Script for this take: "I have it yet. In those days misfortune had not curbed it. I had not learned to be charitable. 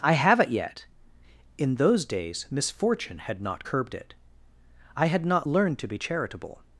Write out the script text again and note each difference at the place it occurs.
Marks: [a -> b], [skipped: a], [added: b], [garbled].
"I have it yet. In those days misfortune had not curbed it. I had not learned to be charitable.